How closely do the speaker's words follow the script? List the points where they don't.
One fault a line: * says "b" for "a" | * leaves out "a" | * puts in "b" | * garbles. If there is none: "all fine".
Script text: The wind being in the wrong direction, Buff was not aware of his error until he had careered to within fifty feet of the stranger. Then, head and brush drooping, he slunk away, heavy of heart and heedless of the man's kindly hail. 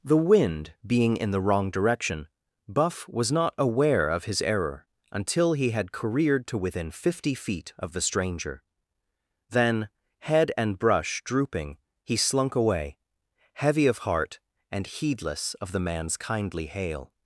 all fine